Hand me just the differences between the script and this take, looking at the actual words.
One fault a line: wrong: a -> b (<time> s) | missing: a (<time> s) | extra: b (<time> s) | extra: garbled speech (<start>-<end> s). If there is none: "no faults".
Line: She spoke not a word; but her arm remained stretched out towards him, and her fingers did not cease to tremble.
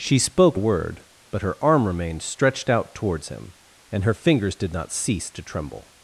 missing: not (0.6 s)